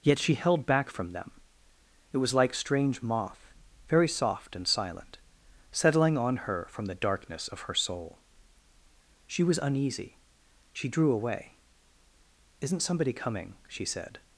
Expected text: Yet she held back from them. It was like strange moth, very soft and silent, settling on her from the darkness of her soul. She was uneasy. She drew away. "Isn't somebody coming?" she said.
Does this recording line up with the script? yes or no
yes